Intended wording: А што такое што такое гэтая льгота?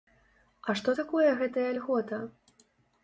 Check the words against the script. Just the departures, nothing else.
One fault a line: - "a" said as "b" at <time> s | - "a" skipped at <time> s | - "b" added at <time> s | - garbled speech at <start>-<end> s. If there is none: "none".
- "што такое" skipped at 1.3 s